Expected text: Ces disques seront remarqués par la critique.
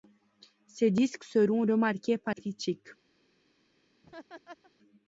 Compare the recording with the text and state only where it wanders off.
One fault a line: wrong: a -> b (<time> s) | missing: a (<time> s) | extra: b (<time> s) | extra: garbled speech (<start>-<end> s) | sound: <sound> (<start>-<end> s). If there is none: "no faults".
missing: la (2.3 s)
sound: laugh (4.0-4.7 s)